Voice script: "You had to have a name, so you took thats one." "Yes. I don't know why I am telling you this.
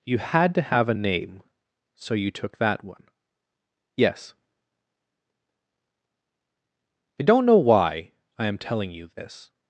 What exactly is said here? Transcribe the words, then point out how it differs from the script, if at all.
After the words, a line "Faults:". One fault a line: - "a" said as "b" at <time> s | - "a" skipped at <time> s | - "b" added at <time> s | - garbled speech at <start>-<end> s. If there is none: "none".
"You had to have a name, so you took that one." "Yes. I don't know why I am telling you this.
Faults:
- "thats" said as "that" at 2.6 s